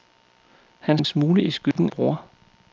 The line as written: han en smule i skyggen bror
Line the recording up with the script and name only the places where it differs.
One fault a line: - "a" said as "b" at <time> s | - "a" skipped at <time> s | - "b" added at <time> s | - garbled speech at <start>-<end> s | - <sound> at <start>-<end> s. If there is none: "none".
- dropout at 1.7-1.8 s